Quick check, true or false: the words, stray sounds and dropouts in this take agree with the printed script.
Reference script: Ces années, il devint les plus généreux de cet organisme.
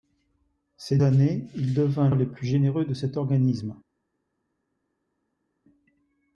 true